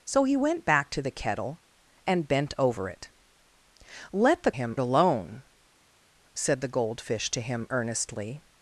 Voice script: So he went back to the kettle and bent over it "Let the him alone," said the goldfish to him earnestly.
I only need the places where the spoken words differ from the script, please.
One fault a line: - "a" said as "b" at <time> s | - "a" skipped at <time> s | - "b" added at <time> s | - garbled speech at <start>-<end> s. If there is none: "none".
none